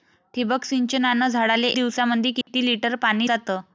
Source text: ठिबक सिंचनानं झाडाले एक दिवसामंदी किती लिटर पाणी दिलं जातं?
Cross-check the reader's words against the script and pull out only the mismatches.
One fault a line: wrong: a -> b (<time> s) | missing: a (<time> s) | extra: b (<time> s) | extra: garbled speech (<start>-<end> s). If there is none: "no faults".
missing: एक (1.7 s)
missing: दिलं (3.3 s)